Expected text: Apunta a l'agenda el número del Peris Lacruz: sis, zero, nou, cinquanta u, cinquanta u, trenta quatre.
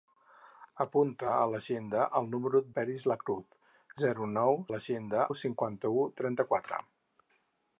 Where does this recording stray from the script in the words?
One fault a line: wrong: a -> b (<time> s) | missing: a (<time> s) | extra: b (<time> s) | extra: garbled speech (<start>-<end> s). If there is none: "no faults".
missing: del (2.6 s)
missing: sis (3.6 s)
wrong: cinquanta -> l'agenda (4.7 s)